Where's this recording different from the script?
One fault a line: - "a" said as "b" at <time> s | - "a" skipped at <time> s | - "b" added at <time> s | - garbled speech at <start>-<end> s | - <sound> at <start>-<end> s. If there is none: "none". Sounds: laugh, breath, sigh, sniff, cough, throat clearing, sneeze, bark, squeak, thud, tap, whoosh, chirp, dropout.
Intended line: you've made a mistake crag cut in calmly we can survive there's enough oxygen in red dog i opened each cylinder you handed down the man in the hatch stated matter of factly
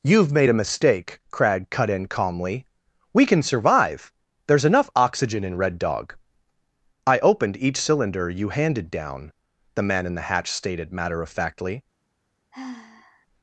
- sigh at 12.5-13.3 s